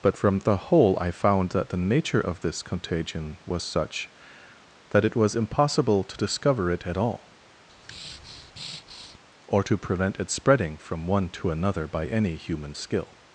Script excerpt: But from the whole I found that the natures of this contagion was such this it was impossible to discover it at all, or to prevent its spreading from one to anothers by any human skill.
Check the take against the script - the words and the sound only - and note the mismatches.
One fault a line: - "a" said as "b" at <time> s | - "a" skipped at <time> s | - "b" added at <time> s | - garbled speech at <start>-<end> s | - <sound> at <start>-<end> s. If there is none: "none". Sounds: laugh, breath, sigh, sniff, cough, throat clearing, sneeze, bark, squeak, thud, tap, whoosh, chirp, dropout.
- "natures" said as "nature" at 1.8 s
- "this" said as "that" at 4.9 s
- breath at 7.7-9.2 s
- "anothers" said as "another" at 11.5 s